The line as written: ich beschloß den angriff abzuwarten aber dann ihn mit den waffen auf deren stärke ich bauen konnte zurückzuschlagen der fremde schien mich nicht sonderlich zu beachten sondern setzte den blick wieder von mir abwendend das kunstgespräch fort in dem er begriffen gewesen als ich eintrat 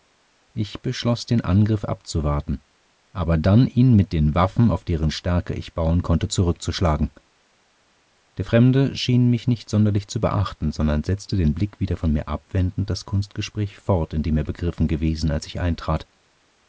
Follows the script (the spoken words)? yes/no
yes